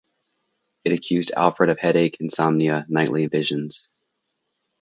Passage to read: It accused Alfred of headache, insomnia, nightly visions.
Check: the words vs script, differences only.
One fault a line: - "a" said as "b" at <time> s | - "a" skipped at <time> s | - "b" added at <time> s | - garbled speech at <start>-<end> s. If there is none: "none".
none